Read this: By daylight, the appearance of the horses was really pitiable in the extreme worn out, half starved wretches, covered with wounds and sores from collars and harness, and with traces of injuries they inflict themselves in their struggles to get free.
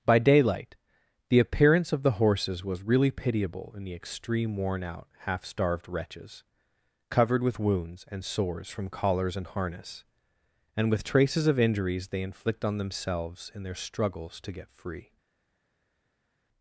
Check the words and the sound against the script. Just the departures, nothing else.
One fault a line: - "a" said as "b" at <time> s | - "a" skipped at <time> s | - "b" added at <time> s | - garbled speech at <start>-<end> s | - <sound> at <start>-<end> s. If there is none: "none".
- "on" added at 12.7 s